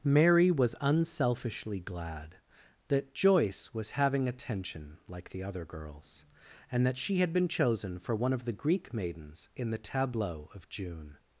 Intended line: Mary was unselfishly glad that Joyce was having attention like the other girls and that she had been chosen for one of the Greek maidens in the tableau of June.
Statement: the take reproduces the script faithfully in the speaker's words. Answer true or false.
true